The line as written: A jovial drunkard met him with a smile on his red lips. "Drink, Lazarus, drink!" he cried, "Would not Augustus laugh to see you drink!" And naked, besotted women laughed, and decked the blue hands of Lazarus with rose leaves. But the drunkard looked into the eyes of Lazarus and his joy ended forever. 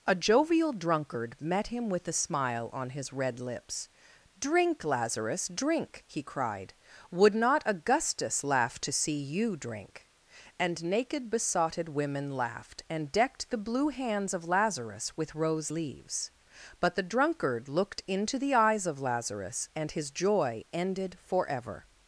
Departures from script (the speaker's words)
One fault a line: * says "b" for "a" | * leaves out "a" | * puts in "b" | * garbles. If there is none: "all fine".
all fine